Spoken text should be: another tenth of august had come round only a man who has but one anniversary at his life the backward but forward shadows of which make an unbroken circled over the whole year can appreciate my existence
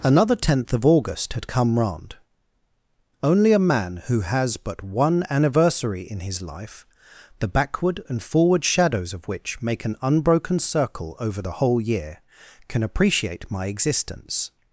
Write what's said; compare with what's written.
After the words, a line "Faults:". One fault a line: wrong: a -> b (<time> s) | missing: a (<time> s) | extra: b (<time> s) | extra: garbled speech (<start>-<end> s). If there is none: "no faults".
another tenth of august had come round only a man who has but one anniversary in his life the backward and forward shadows of which make an unbroken circle over the whole year can appreciate my existence
Faults:
wrong: at -> in (6.0 s)
wrong: but -> and (8.1 s)
wrong: circled -> circle (10.6 s)